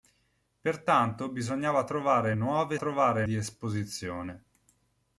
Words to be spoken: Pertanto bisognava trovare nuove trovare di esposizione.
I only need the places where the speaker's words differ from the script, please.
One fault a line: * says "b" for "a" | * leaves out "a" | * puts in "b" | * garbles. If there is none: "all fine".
all fine